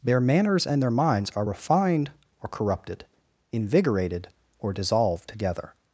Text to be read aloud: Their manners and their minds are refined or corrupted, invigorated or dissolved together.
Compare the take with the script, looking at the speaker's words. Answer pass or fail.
pass